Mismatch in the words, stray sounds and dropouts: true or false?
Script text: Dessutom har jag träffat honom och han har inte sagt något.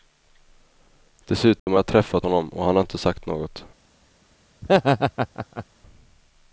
true